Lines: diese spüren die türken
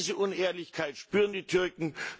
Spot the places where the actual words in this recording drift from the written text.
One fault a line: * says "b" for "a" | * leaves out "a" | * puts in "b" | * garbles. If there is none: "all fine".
* puts in "unehrlichkeit"